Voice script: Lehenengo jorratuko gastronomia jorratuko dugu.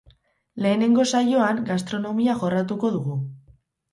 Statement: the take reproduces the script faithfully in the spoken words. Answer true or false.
false